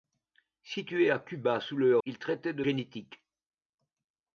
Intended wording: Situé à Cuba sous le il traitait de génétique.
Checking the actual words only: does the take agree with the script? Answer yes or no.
yes